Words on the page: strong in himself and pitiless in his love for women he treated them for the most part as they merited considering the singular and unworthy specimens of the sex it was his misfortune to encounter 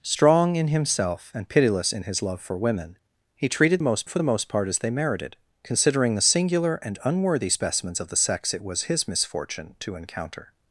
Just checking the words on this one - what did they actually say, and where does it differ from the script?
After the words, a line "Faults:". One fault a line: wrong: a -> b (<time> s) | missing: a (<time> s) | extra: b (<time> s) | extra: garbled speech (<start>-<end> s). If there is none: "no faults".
strong in himself and pitiless in his love for women he treated most for the most part as they merited considering the singular and unworthy specimens of the sex it was his misfortune to encounter
Faults:
wrong: them -> most (3.8 s)